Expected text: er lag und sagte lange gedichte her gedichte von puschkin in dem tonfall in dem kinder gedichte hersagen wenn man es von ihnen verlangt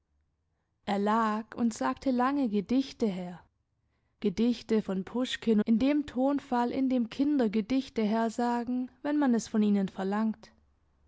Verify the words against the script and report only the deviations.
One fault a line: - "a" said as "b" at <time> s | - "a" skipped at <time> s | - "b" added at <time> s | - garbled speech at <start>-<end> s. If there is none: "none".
none